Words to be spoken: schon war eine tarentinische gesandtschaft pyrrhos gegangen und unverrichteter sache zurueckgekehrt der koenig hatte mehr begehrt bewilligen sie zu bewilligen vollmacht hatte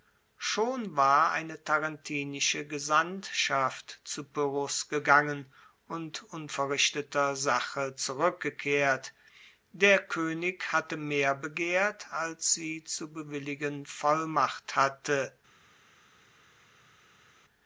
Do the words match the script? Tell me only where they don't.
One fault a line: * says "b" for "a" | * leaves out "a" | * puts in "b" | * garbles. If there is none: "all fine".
* puts in "zu"
* says "als" for "bewilligen"